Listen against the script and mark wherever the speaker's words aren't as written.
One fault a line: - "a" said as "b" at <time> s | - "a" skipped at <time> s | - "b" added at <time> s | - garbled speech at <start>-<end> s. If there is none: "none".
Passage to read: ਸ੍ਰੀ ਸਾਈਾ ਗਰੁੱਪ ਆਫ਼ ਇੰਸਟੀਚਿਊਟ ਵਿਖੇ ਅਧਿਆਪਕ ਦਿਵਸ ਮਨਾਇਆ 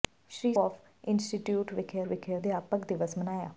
- "ਸਾਈਾ ਗਰੁੱਪ" skipped at 0.5 s
- "ਵਿਖੇ" added at 2.1 s